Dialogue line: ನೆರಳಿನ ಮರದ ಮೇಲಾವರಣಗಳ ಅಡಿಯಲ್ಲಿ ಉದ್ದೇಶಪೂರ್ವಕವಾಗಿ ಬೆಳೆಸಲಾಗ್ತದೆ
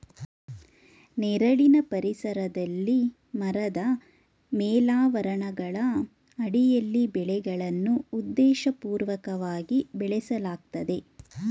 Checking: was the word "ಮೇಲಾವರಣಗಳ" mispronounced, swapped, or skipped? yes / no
no